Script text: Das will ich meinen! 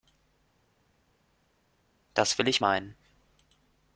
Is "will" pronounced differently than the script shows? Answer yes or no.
no